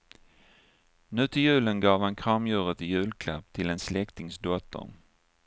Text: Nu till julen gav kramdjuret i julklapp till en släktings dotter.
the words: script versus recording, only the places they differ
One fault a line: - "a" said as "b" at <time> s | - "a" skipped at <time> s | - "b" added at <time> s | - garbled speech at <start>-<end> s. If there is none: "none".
- "han" added at 2.0 s